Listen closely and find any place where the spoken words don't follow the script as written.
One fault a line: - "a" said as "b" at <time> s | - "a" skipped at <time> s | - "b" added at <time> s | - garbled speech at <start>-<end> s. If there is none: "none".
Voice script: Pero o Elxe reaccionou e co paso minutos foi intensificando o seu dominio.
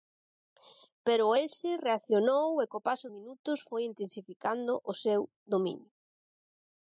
none